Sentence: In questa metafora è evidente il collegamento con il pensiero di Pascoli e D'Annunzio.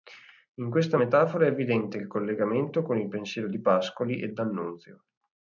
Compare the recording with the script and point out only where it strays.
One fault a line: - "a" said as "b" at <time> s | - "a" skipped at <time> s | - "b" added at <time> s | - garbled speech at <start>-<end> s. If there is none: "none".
none